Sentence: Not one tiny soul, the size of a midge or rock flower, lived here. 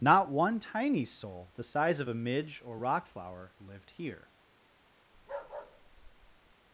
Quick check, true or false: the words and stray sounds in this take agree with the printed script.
false